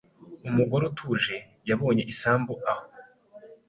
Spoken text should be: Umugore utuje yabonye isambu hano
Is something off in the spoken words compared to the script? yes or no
yes